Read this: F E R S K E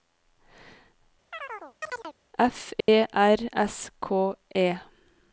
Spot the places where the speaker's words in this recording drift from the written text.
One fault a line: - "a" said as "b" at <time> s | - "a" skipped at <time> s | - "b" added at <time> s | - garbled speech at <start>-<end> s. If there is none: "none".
none